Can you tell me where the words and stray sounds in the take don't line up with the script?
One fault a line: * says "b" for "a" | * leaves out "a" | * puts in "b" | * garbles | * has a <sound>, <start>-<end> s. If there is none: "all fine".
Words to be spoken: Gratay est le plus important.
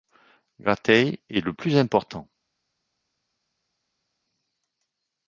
all fine